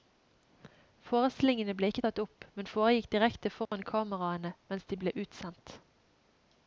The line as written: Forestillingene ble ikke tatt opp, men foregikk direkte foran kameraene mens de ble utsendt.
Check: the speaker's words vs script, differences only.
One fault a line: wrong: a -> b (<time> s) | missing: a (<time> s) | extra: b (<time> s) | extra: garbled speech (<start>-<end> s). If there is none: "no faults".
no faults